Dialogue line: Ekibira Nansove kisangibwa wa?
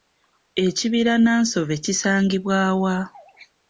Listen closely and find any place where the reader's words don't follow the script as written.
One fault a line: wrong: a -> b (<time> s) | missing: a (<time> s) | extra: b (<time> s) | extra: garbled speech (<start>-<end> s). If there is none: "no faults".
no faults